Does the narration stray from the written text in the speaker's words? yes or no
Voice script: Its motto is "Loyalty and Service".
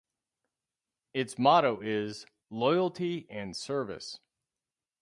no